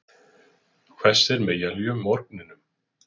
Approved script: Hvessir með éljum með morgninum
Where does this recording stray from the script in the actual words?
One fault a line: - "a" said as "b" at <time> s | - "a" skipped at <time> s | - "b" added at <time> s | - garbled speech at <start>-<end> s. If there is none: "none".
- "með" skipped at 2.0 s